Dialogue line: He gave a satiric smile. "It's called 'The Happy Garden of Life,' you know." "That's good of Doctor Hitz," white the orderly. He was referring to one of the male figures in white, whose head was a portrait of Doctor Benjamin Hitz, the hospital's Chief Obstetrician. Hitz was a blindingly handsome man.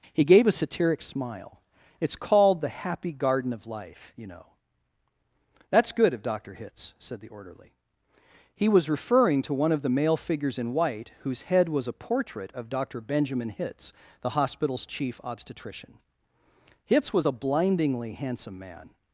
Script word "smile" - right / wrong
right